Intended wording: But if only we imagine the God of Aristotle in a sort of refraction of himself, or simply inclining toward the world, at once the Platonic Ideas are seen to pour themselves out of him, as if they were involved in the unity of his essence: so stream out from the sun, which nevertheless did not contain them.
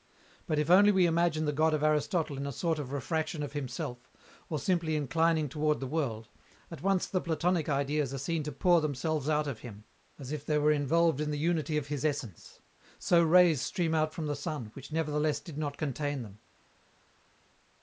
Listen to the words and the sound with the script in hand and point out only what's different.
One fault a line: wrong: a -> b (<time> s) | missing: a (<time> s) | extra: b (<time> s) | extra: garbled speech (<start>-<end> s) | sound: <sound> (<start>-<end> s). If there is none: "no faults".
extra: rays (13.2 s)